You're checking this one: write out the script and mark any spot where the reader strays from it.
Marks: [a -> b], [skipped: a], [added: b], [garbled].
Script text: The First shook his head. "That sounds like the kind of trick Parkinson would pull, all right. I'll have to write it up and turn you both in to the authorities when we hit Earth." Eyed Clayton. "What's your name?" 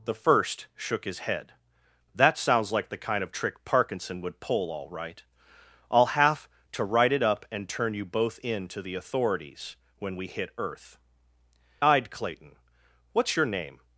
The First shook his head. "That sounds like the kind of trick Parkinson would pull, all right. I'll have to write it up and turn you both in to the authorities when we hit Earth." Eyed Clayton. "What's your name?"